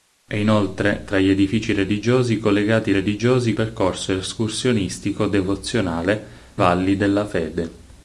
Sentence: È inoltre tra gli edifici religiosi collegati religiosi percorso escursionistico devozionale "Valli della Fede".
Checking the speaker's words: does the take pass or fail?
pass